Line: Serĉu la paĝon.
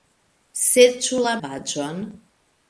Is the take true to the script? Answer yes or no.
yes